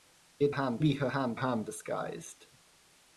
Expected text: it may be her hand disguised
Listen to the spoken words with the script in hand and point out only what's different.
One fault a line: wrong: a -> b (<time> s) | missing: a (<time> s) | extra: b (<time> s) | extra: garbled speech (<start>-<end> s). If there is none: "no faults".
wrong: may -> hand (0.5 s)
extra: hand (1.3 s)